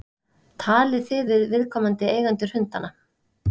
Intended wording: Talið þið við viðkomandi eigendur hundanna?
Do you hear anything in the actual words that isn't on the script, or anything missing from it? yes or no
no